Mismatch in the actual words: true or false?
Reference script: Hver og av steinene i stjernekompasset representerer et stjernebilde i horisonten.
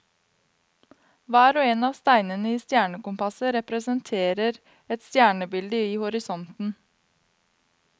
true